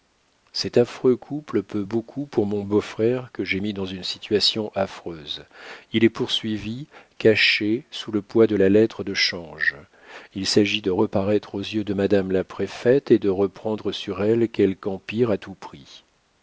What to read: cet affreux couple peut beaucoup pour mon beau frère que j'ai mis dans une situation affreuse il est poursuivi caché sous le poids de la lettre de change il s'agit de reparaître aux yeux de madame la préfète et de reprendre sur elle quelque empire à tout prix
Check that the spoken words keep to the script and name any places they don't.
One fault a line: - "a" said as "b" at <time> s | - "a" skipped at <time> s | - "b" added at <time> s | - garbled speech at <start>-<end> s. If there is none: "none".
none